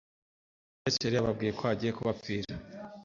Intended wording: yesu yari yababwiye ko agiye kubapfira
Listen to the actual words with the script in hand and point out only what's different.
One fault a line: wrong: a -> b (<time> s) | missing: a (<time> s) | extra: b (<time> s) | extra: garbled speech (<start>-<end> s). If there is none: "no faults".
no faults